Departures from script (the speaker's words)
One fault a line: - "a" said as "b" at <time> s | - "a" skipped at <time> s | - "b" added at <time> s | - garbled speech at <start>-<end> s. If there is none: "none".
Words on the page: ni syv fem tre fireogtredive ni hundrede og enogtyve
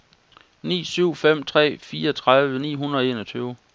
none